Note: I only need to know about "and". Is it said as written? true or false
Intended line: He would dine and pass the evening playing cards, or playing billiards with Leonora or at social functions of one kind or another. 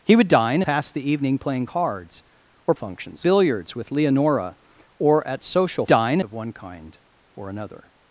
false